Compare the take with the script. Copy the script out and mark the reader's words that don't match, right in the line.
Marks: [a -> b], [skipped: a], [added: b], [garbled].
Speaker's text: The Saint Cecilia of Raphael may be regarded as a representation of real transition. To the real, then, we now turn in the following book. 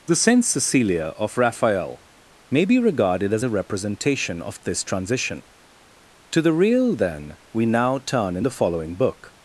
The Saint Cecilia of Raphael may be regarded as a representation of [real -> this] transition. To the real, then, we now turn in the following book.